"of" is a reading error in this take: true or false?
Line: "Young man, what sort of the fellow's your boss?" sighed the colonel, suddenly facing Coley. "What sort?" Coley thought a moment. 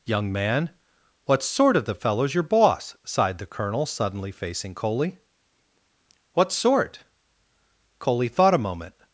false